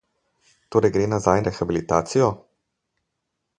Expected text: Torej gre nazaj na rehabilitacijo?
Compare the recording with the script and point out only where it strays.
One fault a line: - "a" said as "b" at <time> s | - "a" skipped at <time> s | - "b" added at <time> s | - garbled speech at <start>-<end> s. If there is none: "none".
- "na" skipped at 1.4 s